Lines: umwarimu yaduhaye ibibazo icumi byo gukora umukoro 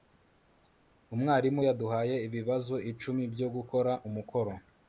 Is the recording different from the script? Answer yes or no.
no